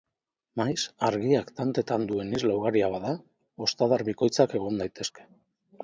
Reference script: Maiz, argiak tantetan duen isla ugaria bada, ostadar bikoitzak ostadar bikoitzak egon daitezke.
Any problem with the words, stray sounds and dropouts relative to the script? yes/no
yes